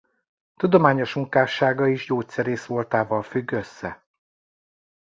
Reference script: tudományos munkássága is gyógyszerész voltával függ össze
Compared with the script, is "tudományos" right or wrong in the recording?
right